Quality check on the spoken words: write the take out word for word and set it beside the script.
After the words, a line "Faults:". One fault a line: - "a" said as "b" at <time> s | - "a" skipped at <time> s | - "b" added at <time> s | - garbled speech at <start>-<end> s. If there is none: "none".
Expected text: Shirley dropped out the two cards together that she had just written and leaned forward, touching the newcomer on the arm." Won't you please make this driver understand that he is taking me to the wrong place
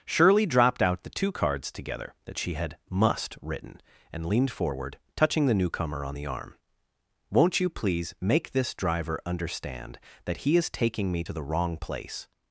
Shirley dropped out the two cards together that she had must written and leaned forward, touching the newcomer on the arm." Won't you please make this driver understand that he is taking me to the wrong place
Faults:
- "just" said as "must" at 2.9 s